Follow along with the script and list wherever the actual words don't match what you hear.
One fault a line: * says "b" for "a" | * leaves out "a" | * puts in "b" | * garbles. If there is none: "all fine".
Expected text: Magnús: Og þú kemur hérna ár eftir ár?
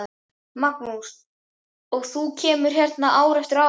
all fine